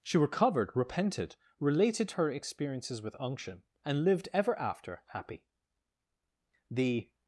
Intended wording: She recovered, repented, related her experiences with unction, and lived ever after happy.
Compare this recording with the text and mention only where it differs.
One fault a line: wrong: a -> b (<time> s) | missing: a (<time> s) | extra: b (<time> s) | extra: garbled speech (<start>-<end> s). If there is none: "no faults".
extra: The (6.7 s)